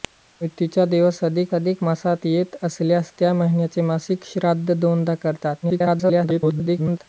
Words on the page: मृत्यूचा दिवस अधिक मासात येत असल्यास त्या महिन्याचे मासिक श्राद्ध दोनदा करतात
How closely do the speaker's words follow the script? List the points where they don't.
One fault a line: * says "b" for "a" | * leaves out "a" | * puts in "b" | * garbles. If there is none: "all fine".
* puts in "अधिक"
* garbles